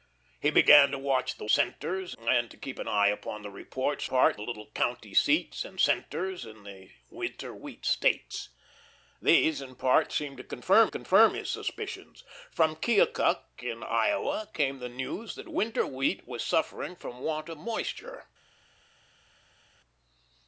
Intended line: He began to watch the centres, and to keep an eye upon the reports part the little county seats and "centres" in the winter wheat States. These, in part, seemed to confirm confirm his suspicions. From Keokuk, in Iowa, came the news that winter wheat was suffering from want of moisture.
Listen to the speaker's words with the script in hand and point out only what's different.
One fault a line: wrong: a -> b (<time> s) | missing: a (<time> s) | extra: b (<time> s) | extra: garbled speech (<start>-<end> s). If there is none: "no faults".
no faults